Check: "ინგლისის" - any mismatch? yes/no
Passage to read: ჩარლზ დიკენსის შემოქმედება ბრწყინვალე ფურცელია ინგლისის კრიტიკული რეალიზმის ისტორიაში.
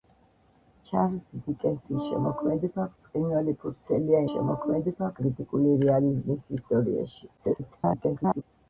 yes